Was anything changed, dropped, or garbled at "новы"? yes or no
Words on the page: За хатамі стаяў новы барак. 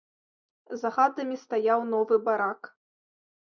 no